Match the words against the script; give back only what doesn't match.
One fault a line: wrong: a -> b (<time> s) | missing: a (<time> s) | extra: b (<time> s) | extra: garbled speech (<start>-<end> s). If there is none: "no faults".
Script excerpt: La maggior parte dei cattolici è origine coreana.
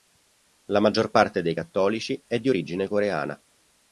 extra: di (2.4 s)